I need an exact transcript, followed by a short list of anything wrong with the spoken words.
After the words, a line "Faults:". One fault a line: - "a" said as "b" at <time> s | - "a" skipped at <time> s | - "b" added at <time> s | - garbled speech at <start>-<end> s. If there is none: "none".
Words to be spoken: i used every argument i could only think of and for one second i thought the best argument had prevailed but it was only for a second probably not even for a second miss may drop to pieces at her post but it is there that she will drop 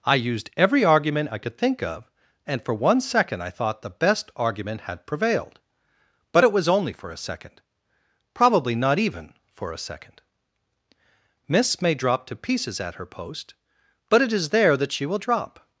i used every argument i could think of and for one second i thought the best argument had prevailed but it was only for a second probably not even for a second miss may drop to pieces at her post but it is there that she will drop
Faults:
- "only" skipped at 1.6 s